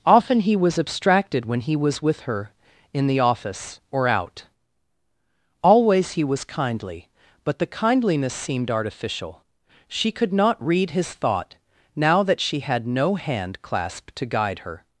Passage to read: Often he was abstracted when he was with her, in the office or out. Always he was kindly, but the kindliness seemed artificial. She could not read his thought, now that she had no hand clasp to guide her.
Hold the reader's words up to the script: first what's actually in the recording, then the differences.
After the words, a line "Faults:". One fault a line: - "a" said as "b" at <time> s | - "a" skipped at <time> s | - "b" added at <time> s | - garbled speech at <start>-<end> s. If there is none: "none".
Often he was abstracted when he was with her, in the office or out. Always he was kindly, but the kindliness seemed artificial. She could not read his thought, now that she had no hand clasp to guide her.
Faults:
none